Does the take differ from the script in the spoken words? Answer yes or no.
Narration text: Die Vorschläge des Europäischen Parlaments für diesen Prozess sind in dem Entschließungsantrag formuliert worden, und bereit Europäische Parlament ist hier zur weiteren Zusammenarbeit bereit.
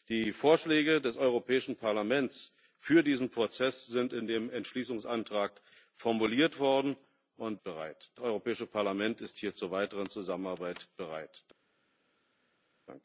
no